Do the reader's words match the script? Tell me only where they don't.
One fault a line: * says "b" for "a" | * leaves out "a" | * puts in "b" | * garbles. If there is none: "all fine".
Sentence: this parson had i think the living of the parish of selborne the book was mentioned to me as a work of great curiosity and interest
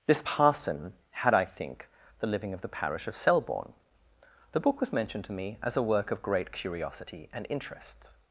all fine